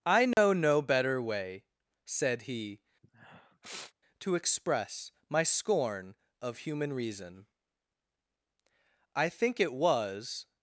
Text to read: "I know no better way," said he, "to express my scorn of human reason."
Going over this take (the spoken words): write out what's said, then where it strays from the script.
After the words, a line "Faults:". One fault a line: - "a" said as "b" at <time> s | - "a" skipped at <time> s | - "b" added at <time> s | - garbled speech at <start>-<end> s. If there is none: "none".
"I know no better way," said he, "to express my scorn of human reason." I think it was
Faults:
- "I think it was" added at 9.1 s